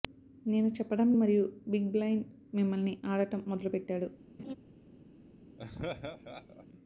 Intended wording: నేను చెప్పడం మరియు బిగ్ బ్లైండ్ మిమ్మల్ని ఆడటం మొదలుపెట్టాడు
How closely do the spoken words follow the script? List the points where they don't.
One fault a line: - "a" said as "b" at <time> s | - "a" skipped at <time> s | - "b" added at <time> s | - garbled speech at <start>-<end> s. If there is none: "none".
none